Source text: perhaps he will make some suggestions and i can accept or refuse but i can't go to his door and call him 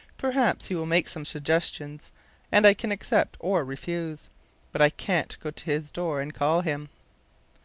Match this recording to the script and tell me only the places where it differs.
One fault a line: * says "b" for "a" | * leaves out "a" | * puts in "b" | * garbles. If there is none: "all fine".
all fine